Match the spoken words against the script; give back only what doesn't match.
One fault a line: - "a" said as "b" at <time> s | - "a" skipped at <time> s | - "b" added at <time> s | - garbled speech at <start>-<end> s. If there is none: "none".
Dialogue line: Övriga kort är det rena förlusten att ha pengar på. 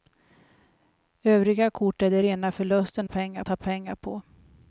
- "att" said as "pengar" at 3.0 s